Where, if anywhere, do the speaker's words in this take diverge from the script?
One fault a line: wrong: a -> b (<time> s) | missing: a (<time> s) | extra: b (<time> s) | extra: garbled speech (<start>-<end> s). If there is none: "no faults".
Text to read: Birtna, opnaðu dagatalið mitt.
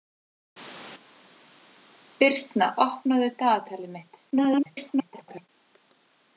extra: garbled speech (4.3-5.5 s)